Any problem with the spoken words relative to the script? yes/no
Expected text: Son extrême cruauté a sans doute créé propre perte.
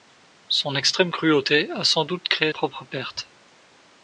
no